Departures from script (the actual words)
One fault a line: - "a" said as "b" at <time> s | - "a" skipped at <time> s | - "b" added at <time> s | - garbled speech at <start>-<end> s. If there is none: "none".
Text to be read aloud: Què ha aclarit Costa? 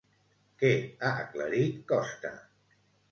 none